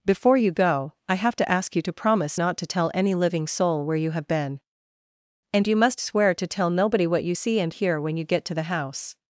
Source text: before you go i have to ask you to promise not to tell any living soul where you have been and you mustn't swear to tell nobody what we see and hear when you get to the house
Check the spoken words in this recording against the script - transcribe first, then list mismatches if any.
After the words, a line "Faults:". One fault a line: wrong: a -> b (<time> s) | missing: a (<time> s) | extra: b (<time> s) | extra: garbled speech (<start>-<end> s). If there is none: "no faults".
before you go i have to ask you to promise not to tell any living soul where you have been and you must swear to tell nobody what you see and hear when you get to the house
Faults:
wrong: mustn't -> must (5.7 s)
wrong: we -> you (7.2 s)